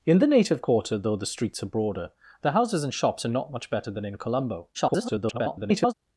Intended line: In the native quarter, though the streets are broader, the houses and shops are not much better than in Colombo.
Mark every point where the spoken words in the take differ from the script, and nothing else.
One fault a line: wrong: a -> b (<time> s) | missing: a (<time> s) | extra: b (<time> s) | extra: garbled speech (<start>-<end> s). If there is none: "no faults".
extra: garbled speech (4.7-5.9 s)